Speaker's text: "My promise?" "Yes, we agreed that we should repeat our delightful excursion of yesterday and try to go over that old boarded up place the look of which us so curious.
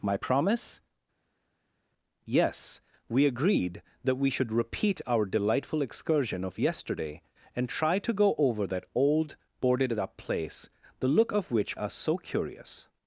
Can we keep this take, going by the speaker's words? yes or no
yes